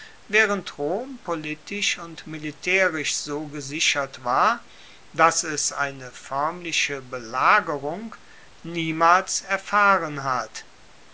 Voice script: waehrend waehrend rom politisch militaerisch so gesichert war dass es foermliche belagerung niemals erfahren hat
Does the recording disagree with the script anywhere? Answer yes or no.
yes